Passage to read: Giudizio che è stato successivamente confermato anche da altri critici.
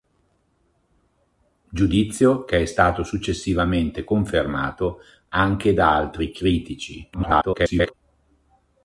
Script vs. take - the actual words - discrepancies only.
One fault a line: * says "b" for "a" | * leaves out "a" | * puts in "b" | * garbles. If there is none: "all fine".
* garbles